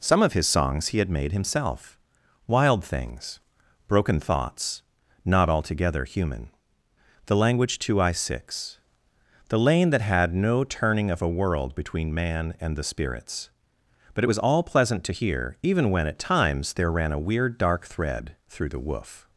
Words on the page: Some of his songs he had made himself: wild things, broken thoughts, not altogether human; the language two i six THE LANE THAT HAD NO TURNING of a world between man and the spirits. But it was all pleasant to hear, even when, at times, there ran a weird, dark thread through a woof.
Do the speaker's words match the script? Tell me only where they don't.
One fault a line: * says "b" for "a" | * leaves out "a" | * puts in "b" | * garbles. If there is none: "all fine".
* says "the" for "a"